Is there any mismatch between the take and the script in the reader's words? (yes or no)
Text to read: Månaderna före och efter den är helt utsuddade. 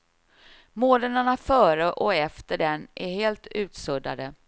no